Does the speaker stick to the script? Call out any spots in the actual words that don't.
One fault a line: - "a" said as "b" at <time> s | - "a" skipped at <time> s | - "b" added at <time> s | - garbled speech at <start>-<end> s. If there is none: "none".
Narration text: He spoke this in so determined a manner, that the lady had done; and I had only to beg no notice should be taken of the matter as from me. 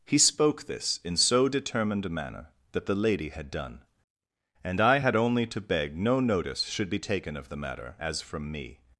none